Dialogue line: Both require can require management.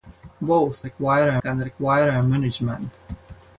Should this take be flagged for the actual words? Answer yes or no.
no